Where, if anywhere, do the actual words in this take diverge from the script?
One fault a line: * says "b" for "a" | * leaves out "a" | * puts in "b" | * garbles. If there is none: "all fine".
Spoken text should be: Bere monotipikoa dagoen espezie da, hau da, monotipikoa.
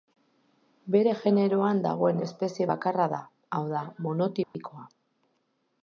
* says "generoan" for "monotipikoa"
* puts in "bakarra"